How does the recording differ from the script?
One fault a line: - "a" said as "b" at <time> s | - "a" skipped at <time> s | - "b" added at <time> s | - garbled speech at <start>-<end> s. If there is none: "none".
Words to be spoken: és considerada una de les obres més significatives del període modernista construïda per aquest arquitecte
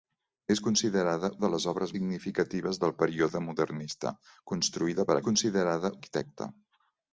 - "una" skipped at 1.3 s
- "més" skipped at 1.9 s
- "aquest" said as "considerada" at 5.3 s